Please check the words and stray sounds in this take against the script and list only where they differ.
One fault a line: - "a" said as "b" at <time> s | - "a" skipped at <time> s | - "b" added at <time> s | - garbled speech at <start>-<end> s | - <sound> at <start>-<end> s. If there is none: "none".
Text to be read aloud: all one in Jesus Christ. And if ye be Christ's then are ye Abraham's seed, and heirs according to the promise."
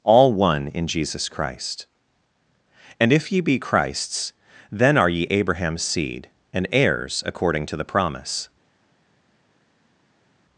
none